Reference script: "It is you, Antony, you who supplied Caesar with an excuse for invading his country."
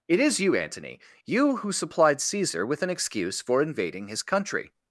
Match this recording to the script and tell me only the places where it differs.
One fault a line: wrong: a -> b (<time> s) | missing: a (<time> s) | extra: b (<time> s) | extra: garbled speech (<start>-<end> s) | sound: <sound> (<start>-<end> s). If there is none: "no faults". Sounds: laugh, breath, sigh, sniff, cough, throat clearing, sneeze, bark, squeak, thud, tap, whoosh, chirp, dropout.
no faults